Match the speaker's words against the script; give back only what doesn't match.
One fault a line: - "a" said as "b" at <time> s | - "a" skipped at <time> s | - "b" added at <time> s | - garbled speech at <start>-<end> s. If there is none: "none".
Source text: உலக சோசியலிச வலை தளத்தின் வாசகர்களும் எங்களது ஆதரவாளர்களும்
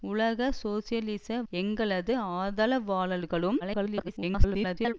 - "வலை தளத்தின் வாசகர்களும்" skipped at 1.4 s
- garbled speech at 3.6-4.9 s